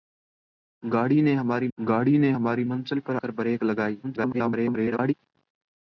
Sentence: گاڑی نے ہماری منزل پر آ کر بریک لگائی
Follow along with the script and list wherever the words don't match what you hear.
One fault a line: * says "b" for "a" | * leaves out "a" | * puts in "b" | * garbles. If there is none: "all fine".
* puts in "گاڑی نے ہماری"
* leaves out "آ"
* garbles